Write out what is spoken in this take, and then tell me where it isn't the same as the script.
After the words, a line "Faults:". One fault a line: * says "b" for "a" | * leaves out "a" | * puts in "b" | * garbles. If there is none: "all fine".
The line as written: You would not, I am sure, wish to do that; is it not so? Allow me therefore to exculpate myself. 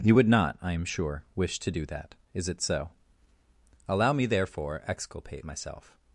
You would not, I am sure, wish to do that; is it so? Allow me therefore exculpate myself.
Faults:
* leaves out "not"
* leaves out "to"